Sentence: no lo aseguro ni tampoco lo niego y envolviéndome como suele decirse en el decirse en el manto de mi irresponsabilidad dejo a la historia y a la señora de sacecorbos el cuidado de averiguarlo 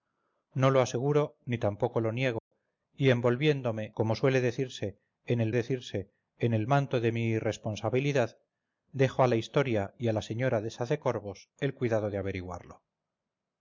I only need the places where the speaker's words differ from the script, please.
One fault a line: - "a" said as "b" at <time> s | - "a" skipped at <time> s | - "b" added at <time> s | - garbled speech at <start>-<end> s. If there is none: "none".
none